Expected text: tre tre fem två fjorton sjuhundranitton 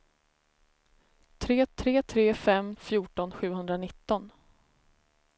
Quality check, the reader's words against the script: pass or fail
fail